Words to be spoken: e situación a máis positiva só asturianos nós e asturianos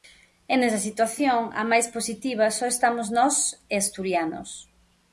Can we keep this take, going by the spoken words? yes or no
no